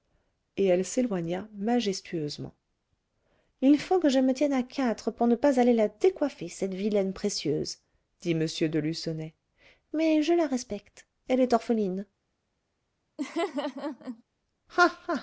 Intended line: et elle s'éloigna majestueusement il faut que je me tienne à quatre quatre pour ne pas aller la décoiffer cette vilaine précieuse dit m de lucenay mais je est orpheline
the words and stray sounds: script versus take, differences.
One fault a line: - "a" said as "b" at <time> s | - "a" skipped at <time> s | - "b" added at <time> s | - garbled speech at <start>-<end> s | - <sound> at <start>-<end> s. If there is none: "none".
- "quatre" skipped at 5.1 s
- "la respecte elle" added at 10.3 s
- laugh at 13.2-14.2 s